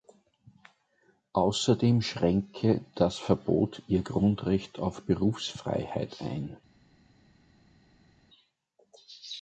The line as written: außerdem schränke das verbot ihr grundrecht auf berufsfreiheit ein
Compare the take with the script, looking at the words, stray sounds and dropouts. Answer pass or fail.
pass